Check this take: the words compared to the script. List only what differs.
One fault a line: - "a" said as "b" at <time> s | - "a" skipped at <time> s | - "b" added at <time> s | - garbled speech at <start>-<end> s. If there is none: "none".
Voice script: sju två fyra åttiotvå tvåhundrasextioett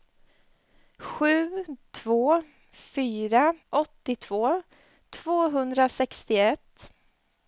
none